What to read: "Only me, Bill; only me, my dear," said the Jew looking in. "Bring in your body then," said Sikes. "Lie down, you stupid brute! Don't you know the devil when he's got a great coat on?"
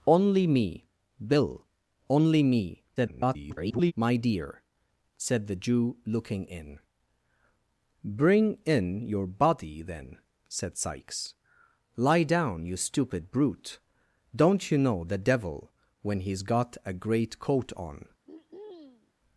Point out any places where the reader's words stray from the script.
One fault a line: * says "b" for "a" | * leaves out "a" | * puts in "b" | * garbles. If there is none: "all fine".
* garbles